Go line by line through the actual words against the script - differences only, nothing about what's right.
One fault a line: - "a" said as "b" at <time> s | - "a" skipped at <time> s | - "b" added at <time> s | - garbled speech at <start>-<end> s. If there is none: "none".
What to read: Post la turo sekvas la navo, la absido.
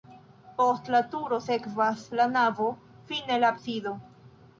- "fine" added at 3.1 s